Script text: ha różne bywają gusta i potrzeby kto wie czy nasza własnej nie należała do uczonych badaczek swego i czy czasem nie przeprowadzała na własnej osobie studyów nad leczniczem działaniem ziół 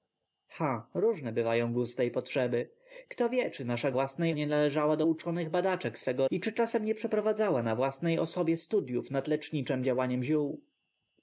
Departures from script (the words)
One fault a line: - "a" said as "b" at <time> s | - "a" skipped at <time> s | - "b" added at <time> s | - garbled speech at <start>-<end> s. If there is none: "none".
none